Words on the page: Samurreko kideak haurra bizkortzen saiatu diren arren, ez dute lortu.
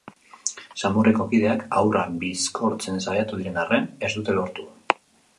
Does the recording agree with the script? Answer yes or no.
yes